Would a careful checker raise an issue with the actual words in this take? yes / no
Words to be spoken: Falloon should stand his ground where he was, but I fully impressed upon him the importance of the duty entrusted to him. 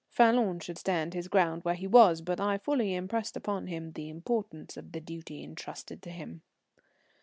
no